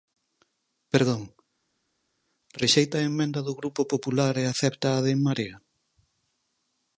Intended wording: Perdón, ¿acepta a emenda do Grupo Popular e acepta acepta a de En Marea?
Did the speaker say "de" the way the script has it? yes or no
yes